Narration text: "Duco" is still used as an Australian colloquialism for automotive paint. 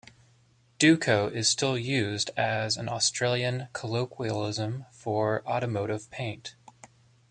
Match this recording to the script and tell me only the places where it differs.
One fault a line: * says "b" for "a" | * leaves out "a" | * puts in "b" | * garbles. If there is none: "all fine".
all fine